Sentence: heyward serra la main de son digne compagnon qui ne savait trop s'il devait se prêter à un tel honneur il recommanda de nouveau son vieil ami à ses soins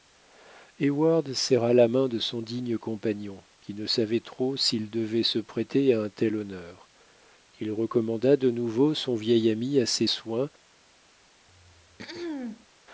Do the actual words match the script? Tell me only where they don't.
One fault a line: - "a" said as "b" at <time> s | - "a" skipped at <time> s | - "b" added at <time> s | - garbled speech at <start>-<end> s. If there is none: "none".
none